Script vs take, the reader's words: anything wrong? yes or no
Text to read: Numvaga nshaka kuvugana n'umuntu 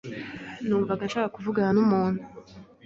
no